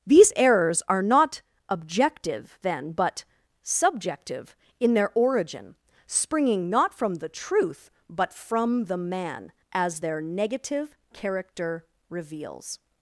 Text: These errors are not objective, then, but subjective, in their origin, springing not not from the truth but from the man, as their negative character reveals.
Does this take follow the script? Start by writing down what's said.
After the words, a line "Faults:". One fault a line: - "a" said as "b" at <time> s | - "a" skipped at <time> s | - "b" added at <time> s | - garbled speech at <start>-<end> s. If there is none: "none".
These errors are not objective, then, but subjective, in their origin, springing not from the truth but from the man, as their negative character reveals.
Faults:
- "not" skipped at 7.0 s